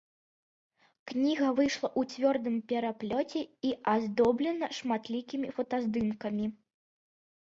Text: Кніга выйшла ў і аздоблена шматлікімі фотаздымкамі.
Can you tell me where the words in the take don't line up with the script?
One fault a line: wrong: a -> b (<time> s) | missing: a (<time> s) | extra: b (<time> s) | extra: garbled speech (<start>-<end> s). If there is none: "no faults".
extra: цвёрдым пераплёце (2.1 s)